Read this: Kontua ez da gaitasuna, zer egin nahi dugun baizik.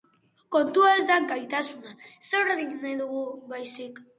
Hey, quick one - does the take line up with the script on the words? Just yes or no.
yes